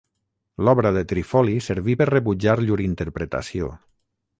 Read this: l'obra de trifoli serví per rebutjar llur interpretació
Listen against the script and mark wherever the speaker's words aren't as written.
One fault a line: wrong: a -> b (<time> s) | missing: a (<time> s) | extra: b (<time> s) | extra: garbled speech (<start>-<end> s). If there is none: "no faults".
no faults